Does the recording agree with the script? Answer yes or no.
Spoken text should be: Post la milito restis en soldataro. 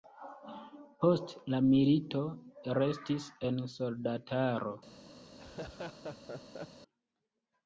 yes